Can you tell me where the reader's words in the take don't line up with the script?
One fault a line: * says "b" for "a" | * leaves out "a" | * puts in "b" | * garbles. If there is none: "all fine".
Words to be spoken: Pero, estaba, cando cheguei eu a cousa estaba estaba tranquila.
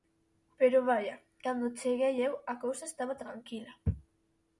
* says "vaia" for "estaba"
* leaves out "estaba"